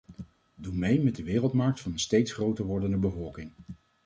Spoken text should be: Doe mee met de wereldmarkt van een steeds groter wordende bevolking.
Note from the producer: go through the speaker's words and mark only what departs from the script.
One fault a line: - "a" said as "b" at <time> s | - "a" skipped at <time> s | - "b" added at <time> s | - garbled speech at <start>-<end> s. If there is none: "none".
none